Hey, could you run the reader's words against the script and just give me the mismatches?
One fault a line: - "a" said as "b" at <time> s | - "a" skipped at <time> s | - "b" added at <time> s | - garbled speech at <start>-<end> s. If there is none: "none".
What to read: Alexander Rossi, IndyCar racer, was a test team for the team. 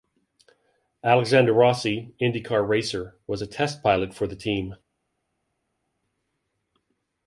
- "team" said as "pilot" at 3.8 s